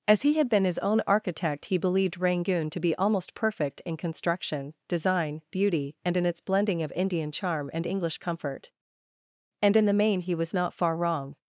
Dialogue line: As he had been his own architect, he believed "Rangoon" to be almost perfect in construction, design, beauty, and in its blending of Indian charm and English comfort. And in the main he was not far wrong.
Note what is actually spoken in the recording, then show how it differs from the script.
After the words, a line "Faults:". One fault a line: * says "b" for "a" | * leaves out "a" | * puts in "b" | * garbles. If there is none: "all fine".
As he had been his own architect, he believed "Rangoon" to be almost perfect in construction, design, beauty, and in its blending of Indian charm and English comfort. And in the main he was not far wrong.
Faults:
all fine